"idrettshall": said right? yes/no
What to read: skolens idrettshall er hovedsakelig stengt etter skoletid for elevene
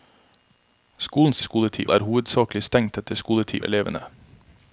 no